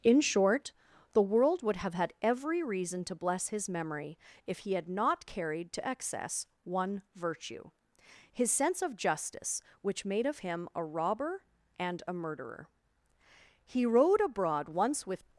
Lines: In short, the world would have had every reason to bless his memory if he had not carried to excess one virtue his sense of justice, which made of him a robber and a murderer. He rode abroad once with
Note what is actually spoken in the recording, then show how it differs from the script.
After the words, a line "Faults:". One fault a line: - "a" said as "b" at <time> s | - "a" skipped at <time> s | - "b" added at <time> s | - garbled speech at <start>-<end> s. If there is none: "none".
In short, the world would have had every reason to bless his memory if he had not carried to excess one virtue his sense of justice, which made of him a robber and a murderer. He rode abroad once with
Faults:
none